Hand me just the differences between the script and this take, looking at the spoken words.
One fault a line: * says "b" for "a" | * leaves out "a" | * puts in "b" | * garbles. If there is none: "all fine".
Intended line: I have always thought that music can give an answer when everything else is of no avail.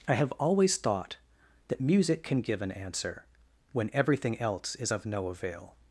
all fine